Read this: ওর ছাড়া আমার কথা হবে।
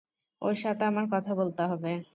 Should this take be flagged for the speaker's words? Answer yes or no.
yes